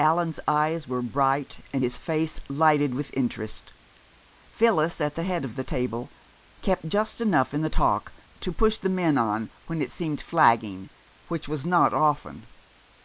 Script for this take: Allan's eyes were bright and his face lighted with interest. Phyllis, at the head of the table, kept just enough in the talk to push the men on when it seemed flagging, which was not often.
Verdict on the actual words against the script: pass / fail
pass